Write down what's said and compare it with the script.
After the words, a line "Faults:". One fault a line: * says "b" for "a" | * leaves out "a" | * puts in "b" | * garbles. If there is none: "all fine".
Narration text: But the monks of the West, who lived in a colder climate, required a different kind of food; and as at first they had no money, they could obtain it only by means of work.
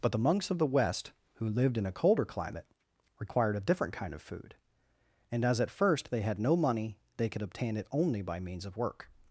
But the monks of the West, who lived in a colder climate, required a different kind of food; and as at first they had no money, they could obtain it only by means of work.
Faults:
all fine